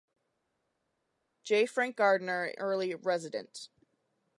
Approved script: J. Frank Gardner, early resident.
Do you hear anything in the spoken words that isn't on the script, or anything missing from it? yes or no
no